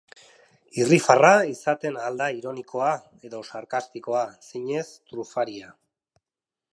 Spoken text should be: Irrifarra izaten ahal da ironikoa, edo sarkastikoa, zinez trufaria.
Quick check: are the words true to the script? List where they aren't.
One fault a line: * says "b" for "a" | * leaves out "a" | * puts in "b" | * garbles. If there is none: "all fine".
all fine